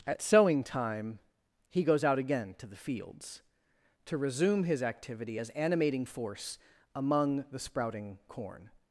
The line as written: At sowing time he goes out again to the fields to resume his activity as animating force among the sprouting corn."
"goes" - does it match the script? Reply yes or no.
yes